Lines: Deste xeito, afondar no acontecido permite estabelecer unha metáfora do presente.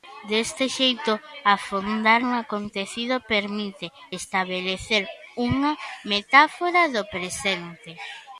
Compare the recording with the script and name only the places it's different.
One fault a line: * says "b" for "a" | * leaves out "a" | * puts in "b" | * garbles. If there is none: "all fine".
all fine